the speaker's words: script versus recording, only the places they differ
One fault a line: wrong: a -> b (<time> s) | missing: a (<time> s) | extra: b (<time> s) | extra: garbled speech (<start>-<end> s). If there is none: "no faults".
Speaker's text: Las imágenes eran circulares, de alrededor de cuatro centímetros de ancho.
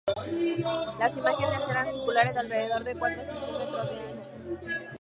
no faults